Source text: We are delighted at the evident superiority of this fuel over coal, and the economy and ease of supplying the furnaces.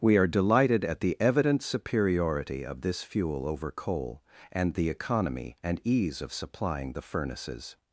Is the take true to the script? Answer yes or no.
yes